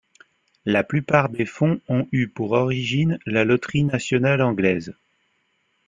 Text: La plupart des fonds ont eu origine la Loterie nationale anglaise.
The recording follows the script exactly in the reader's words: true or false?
false